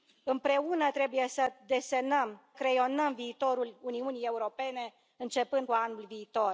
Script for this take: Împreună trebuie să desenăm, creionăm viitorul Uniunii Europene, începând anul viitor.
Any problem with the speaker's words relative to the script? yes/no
no